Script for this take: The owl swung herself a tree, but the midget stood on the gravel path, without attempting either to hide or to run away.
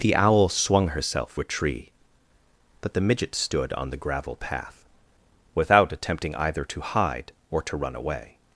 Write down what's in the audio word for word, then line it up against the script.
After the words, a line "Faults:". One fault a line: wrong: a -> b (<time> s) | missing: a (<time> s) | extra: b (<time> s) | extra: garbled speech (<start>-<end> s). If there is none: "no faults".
The owl swung herself a tree, but the midget stood on the gravel path, without attempting either to hide or to run away.
Faults:
no faults